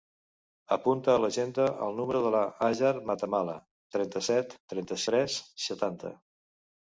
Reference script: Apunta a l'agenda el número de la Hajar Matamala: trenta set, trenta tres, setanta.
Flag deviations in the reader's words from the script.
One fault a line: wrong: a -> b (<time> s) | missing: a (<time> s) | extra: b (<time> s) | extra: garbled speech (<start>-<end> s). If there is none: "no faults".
no faults